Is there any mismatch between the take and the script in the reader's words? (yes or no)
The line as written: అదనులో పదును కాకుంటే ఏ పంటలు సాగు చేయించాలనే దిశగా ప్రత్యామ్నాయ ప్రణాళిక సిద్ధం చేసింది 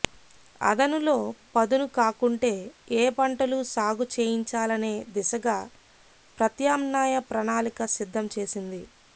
no